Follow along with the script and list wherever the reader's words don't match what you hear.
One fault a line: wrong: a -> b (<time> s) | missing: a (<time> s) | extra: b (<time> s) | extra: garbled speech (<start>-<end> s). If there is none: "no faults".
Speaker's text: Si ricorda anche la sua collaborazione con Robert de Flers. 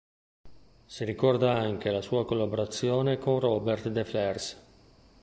no faults